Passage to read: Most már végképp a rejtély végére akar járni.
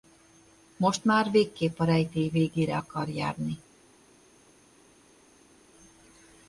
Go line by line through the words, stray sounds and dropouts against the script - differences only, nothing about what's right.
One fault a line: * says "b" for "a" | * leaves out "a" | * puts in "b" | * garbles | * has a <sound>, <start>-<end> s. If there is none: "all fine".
all fine